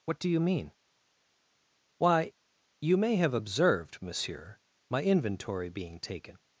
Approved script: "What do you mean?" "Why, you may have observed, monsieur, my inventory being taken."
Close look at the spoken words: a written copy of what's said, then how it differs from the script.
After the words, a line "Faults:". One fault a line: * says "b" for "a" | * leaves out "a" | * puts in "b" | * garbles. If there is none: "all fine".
"What do you mean?" "Why, you may have observed, monsieur, my inventory being taken."
Faults:
all fine